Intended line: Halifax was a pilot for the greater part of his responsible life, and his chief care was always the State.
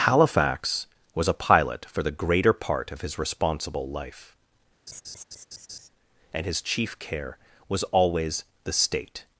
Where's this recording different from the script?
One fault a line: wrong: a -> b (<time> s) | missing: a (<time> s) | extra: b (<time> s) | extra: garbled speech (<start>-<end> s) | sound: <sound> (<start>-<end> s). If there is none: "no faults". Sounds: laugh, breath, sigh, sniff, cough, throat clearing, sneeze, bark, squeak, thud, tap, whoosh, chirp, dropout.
sound: laugh (4.9-5.9 s)